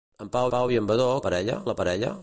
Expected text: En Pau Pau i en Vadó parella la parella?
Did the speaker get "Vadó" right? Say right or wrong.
right